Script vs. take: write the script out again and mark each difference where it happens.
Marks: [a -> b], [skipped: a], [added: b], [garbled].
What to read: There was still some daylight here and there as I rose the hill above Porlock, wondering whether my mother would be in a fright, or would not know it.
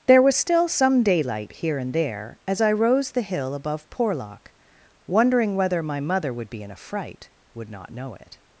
There was still some daylight here and there as I rose the hill above Porlock, wondering whether my mother would be in a fright, [skipped: or] would not know it.